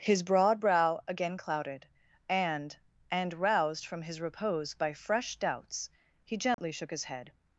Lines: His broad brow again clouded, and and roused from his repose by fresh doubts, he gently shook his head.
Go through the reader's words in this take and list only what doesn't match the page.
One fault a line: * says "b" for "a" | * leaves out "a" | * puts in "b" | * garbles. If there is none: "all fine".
all fine